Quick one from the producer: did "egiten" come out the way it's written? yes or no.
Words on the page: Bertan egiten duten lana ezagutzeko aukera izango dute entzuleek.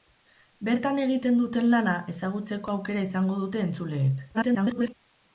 yes